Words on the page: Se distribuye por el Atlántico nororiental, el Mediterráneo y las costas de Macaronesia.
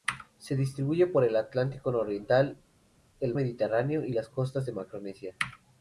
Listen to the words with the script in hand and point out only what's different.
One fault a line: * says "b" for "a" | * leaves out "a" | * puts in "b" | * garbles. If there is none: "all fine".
all fine